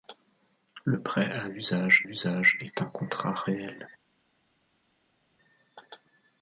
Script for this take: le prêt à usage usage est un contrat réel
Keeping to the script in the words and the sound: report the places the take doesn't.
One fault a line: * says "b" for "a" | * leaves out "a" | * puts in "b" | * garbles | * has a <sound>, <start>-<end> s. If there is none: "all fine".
all fine